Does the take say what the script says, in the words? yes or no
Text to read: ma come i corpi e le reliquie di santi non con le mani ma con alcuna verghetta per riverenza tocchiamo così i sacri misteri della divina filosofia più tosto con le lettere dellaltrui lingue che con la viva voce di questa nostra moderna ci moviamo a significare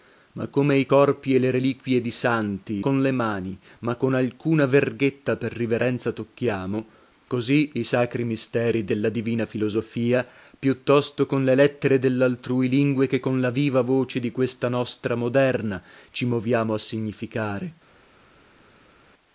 no